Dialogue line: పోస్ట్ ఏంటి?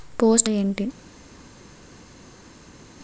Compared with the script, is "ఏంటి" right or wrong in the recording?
right